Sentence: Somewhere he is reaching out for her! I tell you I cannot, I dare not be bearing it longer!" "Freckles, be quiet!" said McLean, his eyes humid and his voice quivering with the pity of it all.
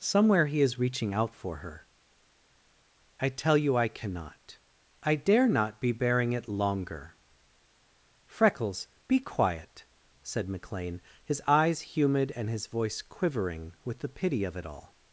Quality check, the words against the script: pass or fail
pass